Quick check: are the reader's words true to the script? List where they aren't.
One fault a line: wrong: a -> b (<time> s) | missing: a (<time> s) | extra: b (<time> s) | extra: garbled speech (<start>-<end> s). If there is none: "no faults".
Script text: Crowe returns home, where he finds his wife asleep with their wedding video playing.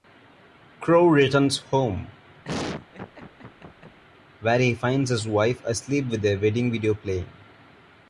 no faults